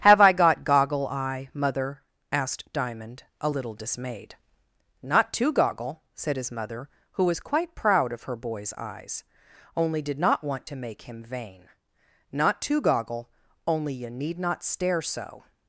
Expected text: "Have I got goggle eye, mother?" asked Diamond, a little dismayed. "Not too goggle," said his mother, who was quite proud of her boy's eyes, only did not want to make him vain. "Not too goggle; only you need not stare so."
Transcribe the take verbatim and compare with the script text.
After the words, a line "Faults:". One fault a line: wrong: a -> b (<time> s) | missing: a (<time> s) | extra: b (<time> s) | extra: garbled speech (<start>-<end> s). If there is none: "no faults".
"Have I got goggle eye, mother?" asked Diamond, a little dismayed. "Not too goggle," said his mother, who was quite proud of her boy's eyes, only did not want to make him vain. "Not too goggle; only you need not stare so."
Faults:
no faults